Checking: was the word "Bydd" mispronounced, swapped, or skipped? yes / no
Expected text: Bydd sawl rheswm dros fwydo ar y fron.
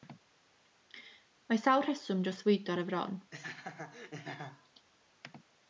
yes